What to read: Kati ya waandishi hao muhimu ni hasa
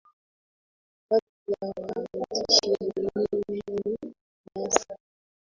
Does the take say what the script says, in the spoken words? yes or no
no